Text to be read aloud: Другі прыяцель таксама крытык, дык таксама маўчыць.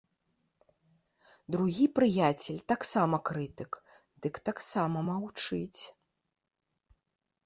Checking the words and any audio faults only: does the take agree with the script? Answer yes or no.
yes